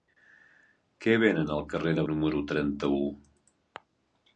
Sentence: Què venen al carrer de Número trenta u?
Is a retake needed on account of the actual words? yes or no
no